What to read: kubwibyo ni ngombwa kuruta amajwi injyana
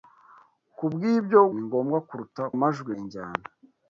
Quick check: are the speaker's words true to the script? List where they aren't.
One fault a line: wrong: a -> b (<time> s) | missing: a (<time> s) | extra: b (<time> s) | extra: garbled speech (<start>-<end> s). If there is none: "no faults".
no faults